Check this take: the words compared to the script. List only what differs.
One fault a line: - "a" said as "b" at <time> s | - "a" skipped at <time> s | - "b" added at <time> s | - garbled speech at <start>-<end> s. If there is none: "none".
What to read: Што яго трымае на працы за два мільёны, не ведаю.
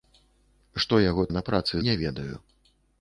- "трымае" skipped at 1.2 s
- "за два мільёны" skipped at 1.7 s